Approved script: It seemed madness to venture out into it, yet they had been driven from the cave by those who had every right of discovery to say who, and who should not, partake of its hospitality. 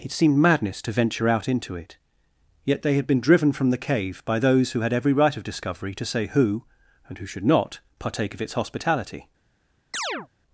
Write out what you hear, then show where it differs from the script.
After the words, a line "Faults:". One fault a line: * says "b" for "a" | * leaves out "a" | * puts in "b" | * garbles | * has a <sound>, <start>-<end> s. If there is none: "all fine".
It seemed madness to venture out into it, yet they had been driven from the cave by those who had every right of discovery to say who, and who should not, partake of its hospitality.
Faults:
* has a chirp, 9.9-10.3 s